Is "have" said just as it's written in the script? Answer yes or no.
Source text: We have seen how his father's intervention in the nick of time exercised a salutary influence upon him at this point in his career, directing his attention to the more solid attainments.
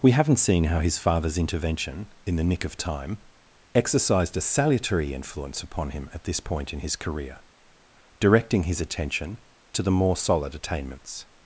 no